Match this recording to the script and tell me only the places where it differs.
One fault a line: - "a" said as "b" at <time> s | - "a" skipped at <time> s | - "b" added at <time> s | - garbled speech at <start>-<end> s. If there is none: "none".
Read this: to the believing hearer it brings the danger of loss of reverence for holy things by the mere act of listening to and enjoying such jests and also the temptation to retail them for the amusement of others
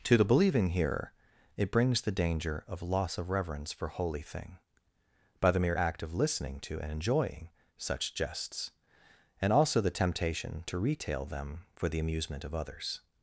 - "things" said as "thing" at 4.2 s